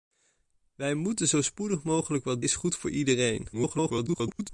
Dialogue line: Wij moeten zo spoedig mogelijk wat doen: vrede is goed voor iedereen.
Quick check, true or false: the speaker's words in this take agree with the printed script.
false